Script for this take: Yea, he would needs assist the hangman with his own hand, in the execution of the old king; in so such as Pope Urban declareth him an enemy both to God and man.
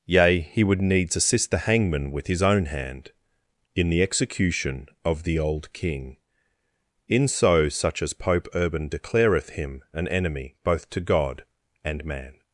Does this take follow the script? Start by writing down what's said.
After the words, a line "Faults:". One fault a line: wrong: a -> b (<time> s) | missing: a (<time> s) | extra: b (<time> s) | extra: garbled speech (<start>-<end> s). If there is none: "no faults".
Yea, he would needs assist the hangman with his own hand, in the execution of the old king; in so such as Pope Urban declareth him an enemy both to God and man.
Faults:
no faults